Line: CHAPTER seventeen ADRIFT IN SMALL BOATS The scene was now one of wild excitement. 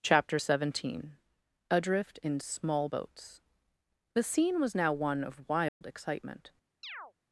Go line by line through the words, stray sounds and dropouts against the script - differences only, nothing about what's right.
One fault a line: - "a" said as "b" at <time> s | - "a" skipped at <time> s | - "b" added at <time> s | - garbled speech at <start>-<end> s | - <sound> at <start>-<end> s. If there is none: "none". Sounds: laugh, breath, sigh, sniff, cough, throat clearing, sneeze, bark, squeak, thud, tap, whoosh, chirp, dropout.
- dropout at 5.7-5.8 s
- chirp at 6.8-7.1 s